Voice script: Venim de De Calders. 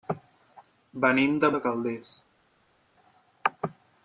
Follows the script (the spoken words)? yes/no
yes